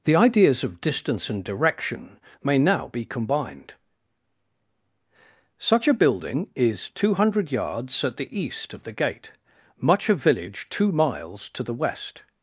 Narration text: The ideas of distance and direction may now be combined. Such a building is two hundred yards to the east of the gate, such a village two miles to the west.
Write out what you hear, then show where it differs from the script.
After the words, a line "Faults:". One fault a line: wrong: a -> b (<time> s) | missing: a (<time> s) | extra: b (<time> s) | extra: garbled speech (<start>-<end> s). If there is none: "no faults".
The ideas of distance and direction may now be combined. Such a building is two hundred yards at the east of the gate, much a village two miles to the west.
Faults:
wrong: to -> at (8.0 s)
wrong: such -> much (9.8 s)